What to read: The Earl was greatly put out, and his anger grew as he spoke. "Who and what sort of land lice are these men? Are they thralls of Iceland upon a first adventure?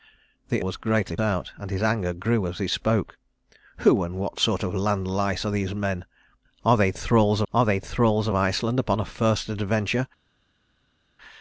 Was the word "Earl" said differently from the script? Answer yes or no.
yes